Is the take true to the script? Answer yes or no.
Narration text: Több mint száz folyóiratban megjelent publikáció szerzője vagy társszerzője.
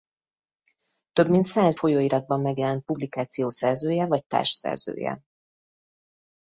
yes